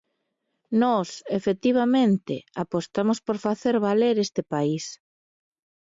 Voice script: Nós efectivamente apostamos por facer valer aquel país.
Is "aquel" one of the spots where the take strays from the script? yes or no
yes